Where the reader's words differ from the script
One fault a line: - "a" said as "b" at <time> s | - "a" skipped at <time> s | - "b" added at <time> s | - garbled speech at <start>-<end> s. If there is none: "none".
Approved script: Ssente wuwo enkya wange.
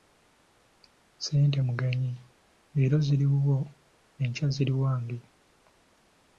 - "mugenyi leero ziri" added at 1.7 s
- "ziri" added at 4.6 s